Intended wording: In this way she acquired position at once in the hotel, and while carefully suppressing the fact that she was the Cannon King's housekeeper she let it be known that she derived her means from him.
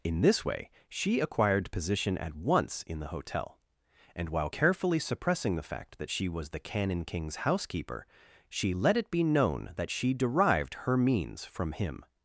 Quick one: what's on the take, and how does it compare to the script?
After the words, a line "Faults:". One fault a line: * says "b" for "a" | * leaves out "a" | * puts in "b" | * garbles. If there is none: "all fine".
In this way she acquired position at once in the hotel, and while carefully suppressing the fact that she was the Cannon King's housekeeper she let it be known that she derived her means from him.
Faults:
all fine